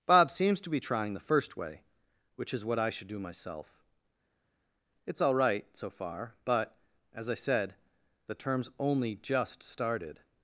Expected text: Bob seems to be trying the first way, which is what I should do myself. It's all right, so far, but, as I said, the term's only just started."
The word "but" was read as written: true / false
true